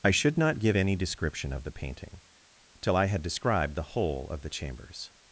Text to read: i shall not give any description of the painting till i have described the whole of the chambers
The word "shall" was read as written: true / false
false